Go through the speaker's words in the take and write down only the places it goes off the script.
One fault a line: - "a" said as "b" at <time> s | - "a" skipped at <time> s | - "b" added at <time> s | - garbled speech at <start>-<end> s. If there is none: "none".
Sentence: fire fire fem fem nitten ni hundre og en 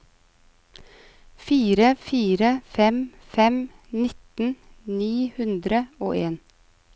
none